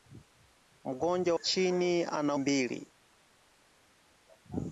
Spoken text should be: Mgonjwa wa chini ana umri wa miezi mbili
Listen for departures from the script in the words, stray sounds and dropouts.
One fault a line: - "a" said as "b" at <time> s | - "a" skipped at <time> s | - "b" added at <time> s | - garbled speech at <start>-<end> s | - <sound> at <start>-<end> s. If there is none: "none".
- "wa" skipped at 1.4 s
- "umri wa miezi" skipped at 2.4 s